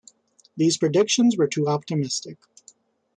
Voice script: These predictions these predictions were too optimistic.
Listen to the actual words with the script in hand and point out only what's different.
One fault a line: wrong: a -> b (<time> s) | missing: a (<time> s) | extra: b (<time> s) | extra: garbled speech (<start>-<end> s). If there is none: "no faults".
missing: these predictions (1.4 s)